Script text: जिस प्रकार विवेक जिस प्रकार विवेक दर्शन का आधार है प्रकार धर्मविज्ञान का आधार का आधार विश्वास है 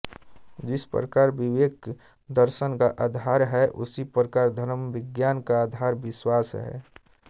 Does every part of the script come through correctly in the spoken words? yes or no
no